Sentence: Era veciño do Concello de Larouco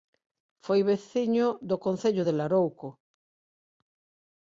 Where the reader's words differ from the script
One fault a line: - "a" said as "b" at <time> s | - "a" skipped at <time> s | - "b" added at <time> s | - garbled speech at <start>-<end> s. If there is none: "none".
- "Era" said as "Foi" at 0.7 s